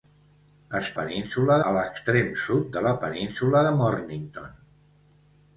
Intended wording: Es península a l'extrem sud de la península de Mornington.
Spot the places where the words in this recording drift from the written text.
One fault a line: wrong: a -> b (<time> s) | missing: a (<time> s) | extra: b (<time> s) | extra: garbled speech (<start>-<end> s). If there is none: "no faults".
no faults